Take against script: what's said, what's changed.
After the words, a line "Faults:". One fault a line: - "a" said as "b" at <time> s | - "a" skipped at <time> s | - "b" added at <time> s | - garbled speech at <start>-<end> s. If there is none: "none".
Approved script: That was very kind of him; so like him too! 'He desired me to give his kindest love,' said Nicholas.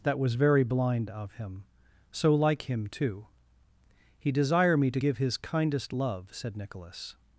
That was very blind of him; so like him too! 'He desire me to give his kindest love,' said Nicholas.
Faults:
- "kind" said as "blind" at 0.6 s
- "desired" said as "desire" at 4.3 s